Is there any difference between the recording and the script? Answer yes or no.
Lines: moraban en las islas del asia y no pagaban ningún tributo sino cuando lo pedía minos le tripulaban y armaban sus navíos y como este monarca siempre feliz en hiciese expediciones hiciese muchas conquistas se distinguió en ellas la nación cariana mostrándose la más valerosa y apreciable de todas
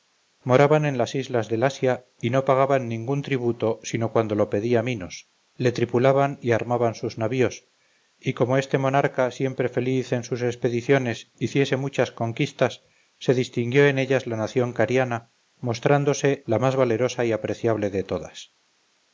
yes